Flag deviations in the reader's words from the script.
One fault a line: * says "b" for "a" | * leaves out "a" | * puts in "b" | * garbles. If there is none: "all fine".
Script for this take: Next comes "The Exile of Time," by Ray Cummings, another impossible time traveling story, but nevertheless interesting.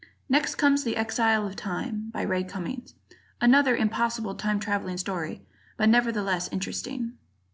all fine